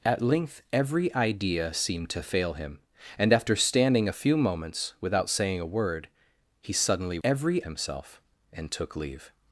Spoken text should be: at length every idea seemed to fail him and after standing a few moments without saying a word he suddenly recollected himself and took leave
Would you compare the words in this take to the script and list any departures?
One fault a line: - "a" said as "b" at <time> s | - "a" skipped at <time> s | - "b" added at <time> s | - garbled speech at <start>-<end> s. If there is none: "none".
- "recollected" said as "every" at 7.2 s